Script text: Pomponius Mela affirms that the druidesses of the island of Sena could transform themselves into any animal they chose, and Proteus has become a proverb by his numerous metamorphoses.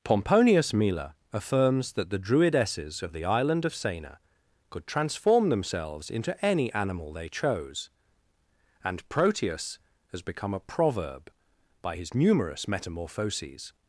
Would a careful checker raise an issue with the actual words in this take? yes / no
no